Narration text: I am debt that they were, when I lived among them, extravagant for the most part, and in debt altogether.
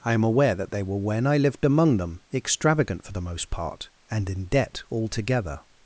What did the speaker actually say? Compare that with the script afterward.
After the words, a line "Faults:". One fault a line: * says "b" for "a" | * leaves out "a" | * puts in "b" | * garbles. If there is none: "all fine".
I am aware that they were, when I lived among them, extravagant for the most part, and in debt altogether.
Faults:
* says "aware" for "debt"